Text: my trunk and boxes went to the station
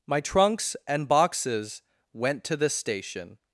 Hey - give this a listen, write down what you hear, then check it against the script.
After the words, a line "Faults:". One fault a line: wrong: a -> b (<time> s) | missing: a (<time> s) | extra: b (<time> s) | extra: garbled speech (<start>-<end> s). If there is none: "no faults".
my trunks and boxes went to the station
Faults:
wrong: trunk -> trunks (0.2 s)